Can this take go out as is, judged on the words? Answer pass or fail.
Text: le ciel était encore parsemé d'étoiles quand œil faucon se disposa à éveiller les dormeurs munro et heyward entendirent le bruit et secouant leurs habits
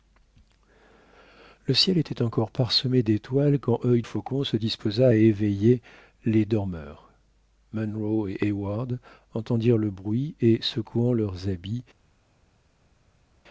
pass